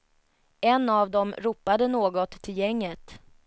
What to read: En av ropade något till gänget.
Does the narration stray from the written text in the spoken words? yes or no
yes